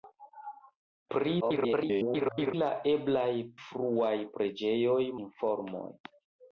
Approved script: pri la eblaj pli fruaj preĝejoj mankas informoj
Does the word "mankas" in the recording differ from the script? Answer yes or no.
yes